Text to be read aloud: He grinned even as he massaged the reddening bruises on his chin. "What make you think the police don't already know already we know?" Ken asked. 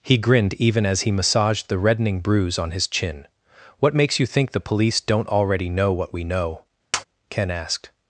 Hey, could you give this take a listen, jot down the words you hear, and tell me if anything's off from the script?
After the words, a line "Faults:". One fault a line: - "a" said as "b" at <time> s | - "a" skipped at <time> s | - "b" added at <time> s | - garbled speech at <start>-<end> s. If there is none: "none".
He grinned even as he massaged the reddening bruise on his chin. "What makes you think the police don't already know what we know?" Ken asked.
Faults:
- "bruises" said as "bruise" at 2.2 s
- "make" said as "makes" at 4.0 s
- "already" said as "what" at 5.9 s